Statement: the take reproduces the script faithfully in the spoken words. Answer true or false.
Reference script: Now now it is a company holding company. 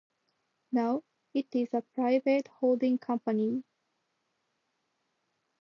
false